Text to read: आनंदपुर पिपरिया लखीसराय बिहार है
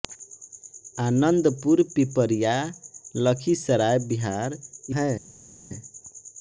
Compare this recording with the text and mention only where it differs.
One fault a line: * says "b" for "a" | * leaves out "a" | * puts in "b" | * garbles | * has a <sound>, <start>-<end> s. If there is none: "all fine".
all fine